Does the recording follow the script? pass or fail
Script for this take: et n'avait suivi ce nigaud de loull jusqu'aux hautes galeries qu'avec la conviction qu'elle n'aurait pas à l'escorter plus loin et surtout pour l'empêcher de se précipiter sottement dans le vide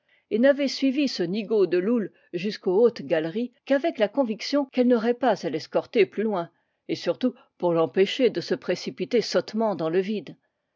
pass